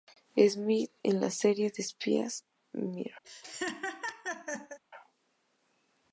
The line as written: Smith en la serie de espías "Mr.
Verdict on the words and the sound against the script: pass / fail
fail